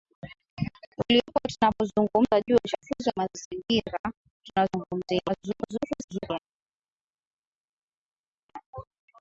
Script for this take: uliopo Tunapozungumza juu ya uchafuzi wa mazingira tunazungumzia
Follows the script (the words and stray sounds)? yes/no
no